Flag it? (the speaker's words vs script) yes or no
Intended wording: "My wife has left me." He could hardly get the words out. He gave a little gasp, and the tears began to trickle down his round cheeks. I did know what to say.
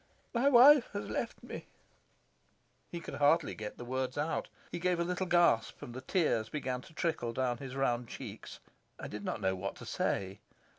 yes